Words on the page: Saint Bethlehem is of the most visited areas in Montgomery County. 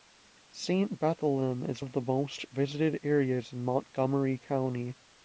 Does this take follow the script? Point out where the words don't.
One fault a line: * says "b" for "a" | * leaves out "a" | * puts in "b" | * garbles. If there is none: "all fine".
all fine